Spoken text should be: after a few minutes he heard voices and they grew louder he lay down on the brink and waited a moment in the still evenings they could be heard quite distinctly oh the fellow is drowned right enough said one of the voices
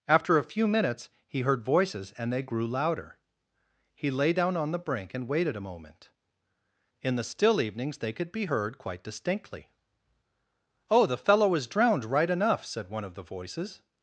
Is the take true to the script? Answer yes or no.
yes